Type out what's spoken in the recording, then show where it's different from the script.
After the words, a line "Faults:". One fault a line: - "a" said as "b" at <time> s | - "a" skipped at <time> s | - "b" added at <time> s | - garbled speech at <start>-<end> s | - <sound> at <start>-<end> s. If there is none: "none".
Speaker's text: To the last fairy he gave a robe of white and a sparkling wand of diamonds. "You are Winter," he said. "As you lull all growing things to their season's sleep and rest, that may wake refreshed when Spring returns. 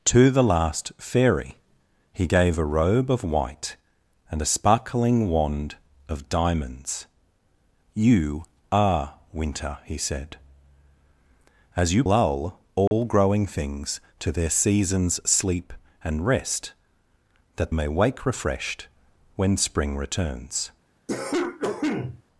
To the last fairy he gave a robe of white and a sparkling wand of diamonds. "You are Winter," he said. "As you lull all growing things to their season's sleep and rest, that may wake refreshed when Spring returns.
Faults:
- dropout at 12.9-12.9 s
- cough at 21.1-22.2 s